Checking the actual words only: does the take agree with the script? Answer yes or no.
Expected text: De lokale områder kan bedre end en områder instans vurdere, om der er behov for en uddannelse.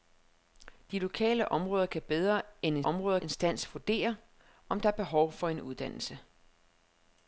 yes